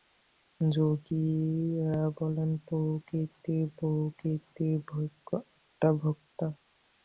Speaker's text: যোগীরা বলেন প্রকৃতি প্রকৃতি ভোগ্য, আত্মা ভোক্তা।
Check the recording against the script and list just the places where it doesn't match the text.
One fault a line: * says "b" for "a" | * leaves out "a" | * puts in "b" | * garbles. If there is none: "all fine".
all fine